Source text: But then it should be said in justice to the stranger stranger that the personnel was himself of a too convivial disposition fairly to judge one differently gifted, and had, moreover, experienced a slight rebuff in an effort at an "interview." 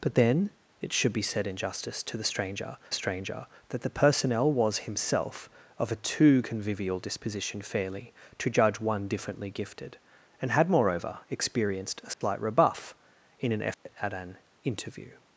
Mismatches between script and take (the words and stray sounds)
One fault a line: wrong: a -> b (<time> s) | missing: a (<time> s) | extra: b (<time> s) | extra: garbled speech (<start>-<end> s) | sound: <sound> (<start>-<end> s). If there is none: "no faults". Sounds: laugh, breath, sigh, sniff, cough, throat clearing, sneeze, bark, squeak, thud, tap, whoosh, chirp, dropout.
sound: dropout (12.1-12.2 s)
sound: dropout (13.7-13.9 s)